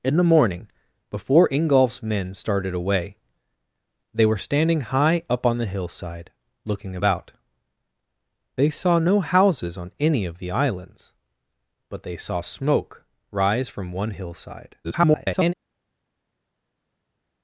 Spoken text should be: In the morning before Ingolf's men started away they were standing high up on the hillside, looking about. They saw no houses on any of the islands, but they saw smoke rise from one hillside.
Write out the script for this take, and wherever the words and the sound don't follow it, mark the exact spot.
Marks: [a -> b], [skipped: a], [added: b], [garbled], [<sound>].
In the morning before Ingolf's men started away they were standing high up on the hillside, looking about. They saw no houses on any of the islands, but they saw smoke rise from one hillside. [garbled]